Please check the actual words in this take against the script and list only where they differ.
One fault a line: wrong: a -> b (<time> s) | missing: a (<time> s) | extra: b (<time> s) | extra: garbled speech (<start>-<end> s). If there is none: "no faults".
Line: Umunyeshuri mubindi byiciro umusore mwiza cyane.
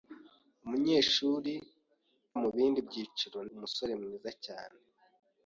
no faults